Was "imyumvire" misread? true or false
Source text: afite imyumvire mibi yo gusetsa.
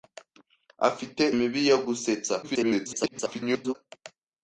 true